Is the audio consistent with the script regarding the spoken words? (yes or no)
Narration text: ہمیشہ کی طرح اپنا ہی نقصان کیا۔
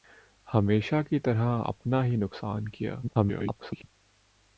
no